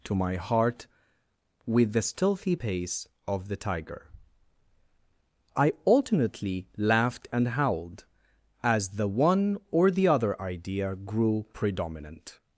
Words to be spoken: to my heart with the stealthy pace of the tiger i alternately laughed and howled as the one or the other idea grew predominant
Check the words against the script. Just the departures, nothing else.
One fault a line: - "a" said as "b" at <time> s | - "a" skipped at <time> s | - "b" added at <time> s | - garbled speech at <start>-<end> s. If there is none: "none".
none